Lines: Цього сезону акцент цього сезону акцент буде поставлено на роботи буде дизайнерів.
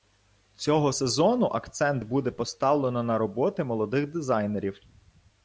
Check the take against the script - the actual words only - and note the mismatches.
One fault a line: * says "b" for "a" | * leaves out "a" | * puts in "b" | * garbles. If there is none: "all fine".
* leaves out "цього сезону акцент"
* says "молодих" for "буде"